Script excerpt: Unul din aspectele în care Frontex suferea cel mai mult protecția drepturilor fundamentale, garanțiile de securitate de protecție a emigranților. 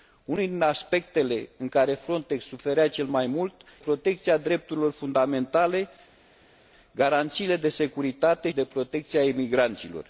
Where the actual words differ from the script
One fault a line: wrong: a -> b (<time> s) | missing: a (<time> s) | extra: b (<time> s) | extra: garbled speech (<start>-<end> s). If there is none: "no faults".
no faults